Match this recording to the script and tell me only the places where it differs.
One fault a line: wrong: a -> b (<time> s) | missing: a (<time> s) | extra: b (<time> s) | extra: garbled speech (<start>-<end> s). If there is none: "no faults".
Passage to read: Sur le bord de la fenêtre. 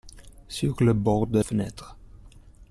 missing: la (1.4 s)